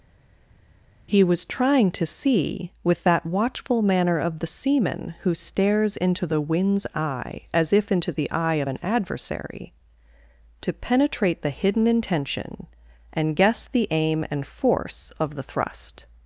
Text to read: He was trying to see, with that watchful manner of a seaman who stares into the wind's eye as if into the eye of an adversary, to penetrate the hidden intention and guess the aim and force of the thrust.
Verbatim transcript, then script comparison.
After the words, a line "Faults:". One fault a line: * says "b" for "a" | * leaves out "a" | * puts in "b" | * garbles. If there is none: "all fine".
He was trying to see, with that watchful manner of the seaman who stares into the wind's eye as if into the eye of an adversary, to penetrate the hidden intention and guess the aim and force of the thrust.
Faults:
* says "the" for "a"